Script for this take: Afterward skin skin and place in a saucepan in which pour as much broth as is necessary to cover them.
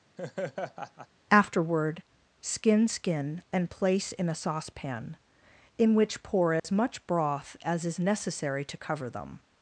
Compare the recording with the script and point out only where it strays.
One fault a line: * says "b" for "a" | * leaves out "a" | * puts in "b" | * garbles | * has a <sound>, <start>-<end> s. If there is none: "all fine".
* has a laugh, 0.2-1.1 s
* has a dropout, 6.6-6.6 s